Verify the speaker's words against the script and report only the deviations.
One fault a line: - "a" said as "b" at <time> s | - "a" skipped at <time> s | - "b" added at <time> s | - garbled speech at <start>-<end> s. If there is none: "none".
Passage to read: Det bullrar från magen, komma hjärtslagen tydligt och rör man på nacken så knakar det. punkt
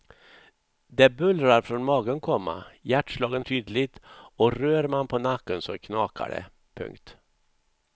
none